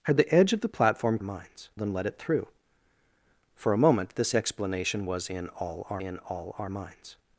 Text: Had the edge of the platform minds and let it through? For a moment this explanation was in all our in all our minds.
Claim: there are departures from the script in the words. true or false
false